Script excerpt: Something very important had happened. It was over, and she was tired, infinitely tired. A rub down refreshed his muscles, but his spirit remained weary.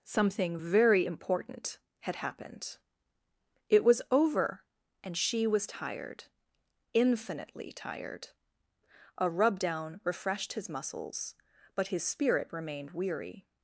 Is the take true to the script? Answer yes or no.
yes